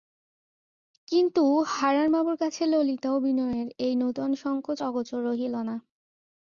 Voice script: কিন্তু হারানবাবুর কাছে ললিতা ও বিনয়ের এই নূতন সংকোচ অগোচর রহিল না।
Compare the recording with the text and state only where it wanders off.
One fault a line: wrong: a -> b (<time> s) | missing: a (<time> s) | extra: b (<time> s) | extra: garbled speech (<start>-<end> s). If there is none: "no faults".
no faults